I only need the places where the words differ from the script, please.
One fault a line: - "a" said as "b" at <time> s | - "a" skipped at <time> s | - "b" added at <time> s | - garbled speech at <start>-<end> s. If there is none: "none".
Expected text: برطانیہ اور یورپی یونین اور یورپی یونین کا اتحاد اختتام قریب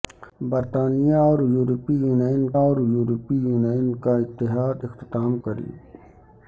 none